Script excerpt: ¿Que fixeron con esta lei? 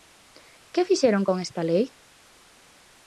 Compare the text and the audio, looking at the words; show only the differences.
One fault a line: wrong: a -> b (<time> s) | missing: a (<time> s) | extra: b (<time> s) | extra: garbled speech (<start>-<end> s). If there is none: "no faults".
no faults